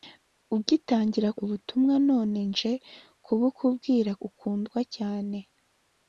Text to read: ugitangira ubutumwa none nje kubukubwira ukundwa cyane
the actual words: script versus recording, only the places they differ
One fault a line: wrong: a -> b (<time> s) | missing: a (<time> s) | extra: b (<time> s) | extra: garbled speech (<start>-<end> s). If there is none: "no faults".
no faults